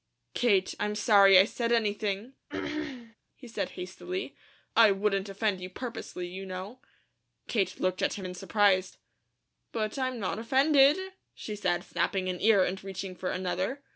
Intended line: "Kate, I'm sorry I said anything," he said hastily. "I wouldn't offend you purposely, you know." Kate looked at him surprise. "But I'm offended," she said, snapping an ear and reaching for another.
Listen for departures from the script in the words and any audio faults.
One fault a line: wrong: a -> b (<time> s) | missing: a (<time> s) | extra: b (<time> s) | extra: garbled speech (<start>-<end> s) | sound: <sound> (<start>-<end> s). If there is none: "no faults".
sound: throat clearing (2.5-3.2 s)
extra: in (8.2 s)
extra: not (10.2 s)